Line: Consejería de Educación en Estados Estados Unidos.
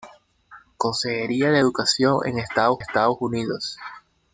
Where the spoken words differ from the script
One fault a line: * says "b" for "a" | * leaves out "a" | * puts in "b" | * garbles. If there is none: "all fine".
all fine